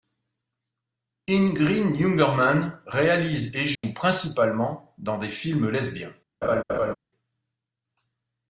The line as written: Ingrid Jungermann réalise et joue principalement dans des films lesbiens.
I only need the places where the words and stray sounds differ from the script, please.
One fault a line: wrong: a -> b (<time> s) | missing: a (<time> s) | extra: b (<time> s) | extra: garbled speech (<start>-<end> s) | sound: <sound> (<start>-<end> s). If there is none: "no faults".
sound: dropout (3.7-3.8 s)
sound: laugh (6.4-6.9 s)